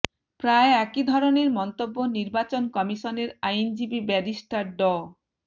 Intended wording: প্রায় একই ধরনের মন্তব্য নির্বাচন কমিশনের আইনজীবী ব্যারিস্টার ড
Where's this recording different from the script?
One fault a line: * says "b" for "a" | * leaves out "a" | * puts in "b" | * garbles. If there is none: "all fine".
all fine